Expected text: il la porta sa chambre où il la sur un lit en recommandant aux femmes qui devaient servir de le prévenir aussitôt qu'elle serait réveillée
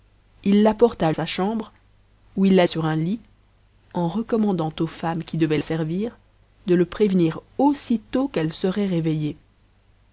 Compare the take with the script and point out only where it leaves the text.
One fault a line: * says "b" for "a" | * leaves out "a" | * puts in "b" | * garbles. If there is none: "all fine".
all fine